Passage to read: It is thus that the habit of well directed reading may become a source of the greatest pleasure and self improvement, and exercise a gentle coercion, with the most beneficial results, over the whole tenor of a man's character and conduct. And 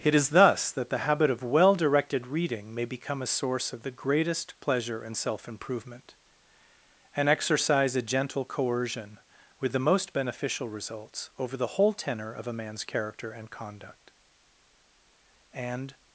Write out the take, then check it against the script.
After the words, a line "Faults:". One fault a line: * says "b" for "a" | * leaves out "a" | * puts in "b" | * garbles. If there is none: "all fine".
It is thus that the habit of well directed reading may become a source of the greatest pleasure and self improvement, and exercise a gentle coercion, with the most beneficial results, over the whole tenor of a man's character and conduct. And
Faults:
all fine